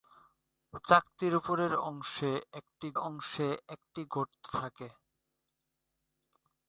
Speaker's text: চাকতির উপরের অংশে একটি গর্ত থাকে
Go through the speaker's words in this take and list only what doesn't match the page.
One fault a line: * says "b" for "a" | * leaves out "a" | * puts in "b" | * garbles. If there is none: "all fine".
* puts in "অংশে একটি"